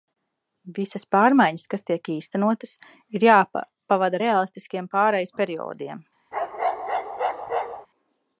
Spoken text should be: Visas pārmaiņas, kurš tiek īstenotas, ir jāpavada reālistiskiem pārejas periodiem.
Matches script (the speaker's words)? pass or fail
fail